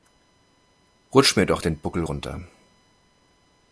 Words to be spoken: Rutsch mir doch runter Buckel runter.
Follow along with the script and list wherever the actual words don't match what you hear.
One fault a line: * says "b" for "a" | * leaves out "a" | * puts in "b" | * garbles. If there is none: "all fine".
* says "den" for "runter"